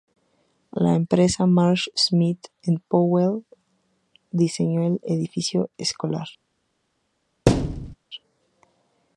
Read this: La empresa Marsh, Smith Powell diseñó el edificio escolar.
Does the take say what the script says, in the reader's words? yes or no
no